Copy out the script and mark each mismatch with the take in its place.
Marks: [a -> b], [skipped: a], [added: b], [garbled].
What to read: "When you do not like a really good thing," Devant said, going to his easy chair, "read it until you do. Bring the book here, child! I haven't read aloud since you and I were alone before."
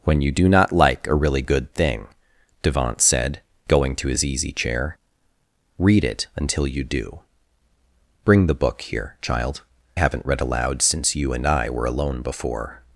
"When you do not like a really good thing," Devant said, going to his easy chair, "read it until you do. Bring the book here, child! [skipped: I] haven't read aloud since you and I were alone before."